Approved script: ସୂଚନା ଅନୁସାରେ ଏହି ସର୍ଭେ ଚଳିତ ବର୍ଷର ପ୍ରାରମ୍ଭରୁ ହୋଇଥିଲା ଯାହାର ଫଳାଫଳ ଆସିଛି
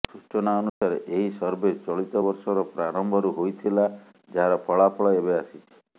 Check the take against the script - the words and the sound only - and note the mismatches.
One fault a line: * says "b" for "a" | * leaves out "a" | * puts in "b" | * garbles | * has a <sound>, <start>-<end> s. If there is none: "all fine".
* has a dropout, 0.7-0.8 s
* puts in "ଏବେ"